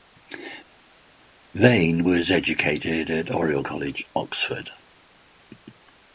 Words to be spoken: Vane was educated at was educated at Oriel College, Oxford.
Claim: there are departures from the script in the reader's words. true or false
true